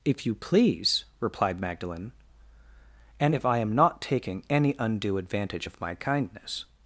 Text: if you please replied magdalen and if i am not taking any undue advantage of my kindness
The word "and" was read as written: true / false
true